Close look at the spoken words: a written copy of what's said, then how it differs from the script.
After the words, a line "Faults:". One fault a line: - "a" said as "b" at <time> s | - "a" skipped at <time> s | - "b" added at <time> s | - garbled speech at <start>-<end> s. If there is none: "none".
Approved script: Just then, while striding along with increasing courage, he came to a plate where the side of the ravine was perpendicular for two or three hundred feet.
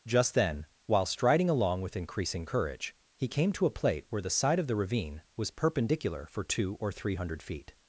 Just then, while striding along with increasing courage, he came to a plate where the side of the ravine was perpendicular for two or three hundred feet.
Faults:
none